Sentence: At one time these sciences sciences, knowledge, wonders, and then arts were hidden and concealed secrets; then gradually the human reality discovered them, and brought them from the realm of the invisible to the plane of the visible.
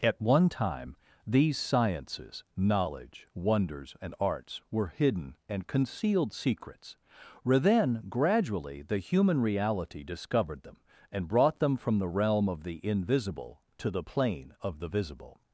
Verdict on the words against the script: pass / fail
fail